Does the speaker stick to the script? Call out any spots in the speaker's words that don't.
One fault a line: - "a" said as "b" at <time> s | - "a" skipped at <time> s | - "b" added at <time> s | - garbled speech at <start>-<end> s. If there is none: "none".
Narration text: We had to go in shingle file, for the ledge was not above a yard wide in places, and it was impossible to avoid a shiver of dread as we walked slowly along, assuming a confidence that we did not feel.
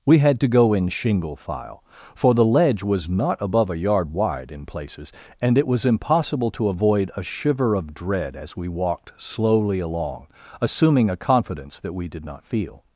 none